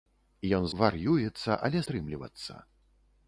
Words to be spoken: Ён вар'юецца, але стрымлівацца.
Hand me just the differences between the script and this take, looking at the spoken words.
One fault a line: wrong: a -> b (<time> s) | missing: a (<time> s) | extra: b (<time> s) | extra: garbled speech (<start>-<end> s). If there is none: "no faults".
no faults